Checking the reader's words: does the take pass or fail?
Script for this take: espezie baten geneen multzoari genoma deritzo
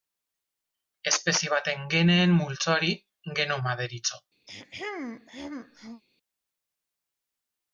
pass